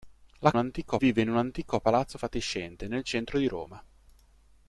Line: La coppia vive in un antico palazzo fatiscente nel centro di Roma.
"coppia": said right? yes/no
no